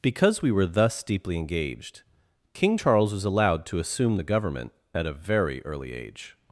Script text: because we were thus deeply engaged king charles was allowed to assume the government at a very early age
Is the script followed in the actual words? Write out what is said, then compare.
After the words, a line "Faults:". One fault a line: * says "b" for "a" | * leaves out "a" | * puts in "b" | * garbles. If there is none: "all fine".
because we were thus deeply engaged king charles was allowed to assume the government at a very early age
Faults:
all fine